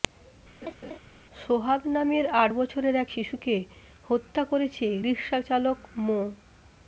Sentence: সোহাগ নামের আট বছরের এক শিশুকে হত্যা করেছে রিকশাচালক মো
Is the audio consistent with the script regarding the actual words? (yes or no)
yes